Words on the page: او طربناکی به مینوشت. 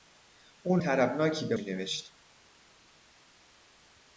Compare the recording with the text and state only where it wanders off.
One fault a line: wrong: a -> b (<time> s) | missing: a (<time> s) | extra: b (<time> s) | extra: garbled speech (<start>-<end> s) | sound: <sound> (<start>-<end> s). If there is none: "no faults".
no faults